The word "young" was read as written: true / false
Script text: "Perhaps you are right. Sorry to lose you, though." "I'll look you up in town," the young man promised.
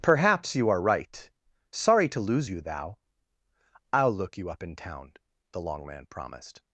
false